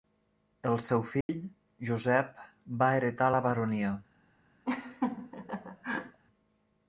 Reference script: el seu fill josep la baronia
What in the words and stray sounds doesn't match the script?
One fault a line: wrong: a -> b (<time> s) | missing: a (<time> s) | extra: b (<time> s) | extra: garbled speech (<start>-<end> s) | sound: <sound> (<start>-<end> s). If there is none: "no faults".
sound: dropout (1.2-1.3 s)
extra: va heretar (2.8 s)
sound: laugh (4.7-6.2 s)